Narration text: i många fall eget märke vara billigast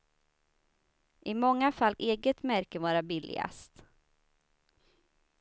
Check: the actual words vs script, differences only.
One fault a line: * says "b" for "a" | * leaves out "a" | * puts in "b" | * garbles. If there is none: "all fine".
all fine